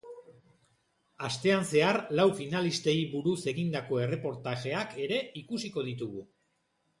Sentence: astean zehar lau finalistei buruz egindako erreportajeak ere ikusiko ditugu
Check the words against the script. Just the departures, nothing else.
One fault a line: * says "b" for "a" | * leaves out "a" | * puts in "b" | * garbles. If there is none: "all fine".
all fine